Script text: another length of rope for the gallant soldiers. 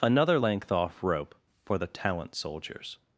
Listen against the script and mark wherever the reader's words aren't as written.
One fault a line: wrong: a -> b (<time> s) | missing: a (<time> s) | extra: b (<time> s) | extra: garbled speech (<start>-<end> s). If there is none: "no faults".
wrong: of -> off (0.7 s)
wrong: gallant -> talent (1.9 s)